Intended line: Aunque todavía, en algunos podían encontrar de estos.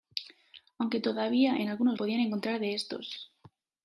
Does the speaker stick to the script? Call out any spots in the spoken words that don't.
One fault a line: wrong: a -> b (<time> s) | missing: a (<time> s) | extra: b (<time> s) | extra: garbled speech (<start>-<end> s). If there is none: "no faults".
no faults